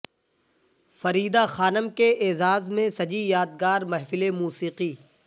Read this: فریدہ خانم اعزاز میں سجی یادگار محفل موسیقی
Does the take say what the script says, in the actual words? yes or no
no